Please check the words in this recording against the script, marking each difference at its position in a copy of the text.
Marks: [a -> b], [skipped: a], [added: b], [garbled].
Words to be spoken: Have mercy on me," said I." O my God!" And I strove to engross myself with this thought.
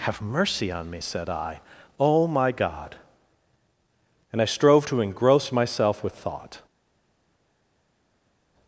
Have mercy on me," said I." O my God!" And I strove to engross myself with [skipped: this] thought.